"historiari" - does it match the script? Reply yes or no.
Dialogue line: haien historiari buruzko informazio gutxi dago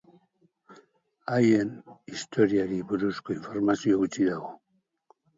yes